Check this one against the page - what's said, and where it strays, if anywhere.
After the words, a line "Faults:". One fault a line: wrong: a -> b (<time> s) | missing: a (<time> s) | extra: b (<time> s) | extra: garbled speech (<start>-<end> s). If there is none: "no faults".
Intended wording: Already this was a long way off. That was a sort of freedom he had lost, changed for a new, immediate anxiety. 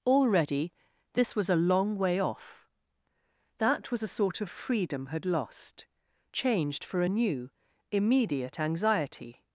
Already this was a long way off. That was a sort of freedom had lost, changed for a new, immediate anxiety.
Faults:
missing: he (5.1 s)